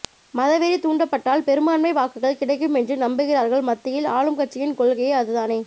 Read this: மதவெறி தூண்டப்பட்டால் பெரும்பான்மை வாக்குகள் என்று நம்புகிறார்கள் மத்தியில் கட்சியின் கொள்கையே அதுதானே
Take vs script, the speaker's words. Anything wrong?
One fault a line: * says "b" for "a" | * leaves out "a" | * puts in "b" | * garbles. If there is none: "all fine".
* puts in "கிடைக்கும்"
* puts in "ஆளும்"